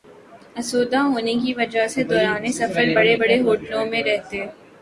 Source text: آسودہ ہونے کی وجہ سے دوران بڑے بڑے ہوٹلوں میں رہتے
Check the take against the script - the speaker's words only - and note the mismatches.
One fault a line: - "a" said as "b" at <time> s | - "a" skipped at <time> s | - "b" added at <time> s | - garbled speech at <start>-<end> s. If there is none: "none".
- "سفر" added at 2.5 s